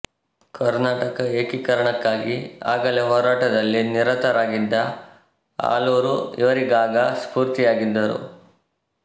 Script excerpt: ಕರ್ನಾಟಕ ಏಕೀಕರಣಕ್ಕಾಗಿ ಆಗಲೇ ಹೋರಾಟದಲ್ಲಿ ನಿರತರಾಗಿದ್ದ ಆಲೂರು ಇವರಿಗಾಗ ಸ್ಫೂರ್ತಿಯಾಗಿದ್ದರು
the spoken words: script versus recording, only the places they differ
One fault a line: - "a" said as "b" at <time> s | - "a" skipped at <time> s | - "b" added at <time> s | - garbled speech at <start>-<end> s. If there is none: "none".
none